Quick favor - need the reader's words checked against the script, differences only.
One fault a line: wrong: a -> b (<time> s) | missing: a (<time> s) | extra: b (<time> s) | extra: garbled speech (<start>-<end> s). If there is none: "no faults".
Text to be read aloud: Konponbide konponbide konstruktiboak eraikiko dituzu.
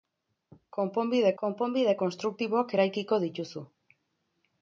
no faults